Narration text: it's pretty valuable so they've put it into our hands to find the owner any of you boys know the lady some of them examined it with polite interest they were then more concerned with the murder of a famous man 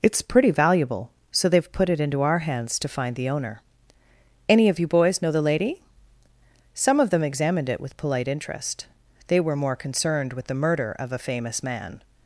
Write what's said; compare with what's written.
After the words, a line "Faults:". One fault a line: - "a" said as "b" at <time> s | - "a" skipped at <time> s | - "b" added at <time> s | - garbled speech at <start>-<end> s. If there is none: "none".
it's pretty valuable so they've put it into our hands to find the owner any of you boys know the lady some of them examined it with polite interest they were more concerned with the murder of a famous man
Faults:
- "then" skipped at 9.6 s